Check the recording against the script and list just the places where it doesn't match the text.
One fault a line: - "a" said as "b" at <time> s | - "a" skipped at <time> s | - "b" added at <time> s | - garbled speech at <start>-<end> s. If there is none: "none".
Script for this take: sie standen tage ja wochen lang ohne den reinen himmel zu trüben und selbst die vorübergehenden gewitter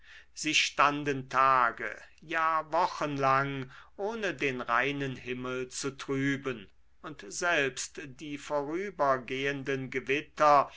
none